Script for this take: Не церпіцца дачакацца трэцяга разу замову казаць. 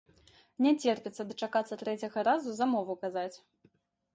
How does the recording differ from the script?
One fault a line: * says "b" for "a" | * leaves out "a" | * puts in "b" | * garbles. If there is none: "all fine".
all fine